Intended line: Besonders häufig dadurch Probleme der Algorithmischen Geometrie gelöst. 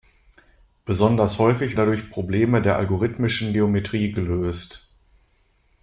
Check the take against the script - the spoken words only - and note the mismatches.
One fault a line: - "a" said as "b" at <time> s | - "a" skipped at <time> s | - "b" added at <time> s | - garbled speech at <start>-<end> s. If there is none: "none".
none